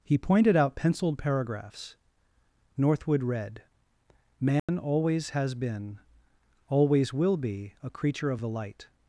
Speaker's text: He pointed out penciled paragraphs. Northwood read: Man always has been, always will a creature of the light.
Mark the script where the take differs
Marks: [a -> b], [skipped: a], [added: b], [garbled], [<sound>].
He pointed out penciled paragraphs. Northwood read: Man [dropout] always has been, always will [added: be] a creature of the light.